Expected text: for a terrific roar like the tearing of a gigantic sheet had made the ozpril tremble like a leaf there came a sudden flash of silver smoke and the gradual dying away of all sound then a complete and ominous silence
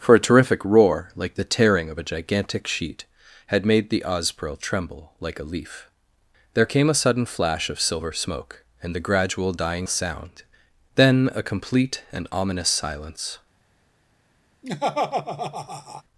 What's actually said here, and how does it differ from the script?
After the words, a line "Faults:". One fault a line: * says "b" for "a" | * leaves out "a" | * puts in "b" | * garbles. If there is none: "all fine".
for a terrific roar like the tearing of a gigantic sheet had made the ozpril tremble like a leaf there came a sudden flash of silver smoke and the gradual dying sound then a complete and ominous silence
Faults:
* leaves out "away of all"